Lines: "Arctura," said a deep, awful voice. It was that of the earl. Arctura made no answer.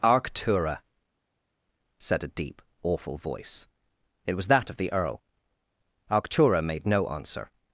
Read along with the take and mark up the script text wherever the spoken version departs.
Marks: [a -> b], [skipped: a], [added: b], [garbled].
"Arctura," said a deep, awful voice. It was that of the earl. Arctura made no answer.